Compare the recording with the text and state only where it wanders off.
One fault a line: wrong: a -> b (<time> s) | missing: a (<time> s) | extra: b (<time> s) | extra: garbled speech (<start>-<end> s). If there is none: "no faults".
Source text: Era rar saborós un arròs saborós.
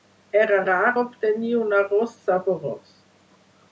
wrong: saborós -> obtenir (1.0 s)